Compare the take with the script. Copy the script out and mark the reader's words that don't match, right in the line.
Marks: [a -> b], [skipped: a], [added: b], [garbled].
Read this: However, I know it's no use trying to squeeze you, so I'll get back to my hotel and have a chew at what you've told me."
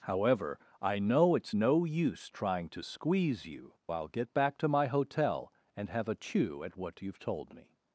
However, I know it's no use trying to squeeze you, [skipped: so] I'll get back to my hotel and have a chew at what you've told me."